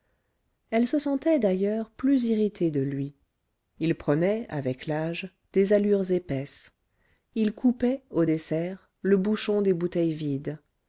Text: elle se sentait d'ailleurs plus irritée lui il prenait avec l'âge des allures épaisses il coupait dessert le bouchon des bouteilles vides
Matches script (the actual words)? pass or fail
fail